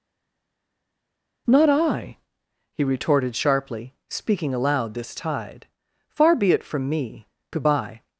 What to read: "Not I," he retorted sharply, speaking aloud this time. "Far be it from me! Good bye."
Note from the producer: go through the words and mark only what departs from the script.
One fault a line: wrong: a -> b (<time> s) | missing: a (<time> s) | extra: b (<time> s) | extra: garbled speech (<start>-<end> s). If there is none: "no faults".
wrong: time -> tide (5.1 s)